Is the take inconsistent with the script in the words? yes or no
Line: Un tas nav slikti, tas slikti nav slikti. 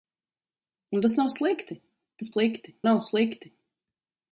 no